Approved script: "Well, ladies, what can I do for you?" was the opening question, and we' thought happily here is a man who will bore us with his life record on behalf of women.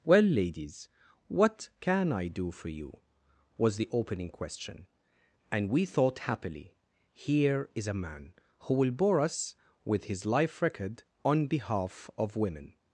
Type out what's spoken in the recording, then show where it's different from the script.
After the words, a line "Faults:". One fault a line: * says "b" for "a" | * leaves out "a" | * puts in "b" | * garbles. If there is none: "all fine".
"Well, ladies, what can I do for you?" was the opening question, and we' thought happily here is a man who will bore us with his life record on behalf of women.
Faults:
all fine